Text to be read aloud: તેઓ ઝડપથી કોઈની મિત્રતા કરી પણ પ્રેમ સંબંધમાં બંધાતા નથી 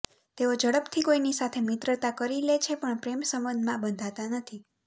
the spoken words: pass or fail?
fail